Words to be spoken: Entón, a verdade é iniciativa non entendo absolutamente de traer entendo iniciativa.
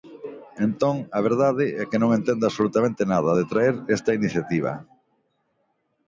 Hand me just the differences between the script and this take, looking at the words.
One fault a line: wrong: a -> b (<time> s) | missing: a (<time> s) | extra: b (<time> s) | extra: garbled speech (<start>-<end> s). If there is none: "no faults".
wrong: iniciativa -> que (1.9 s)
extra: nada (3.1 s)
wrong: entendo -> esta (4.0 s)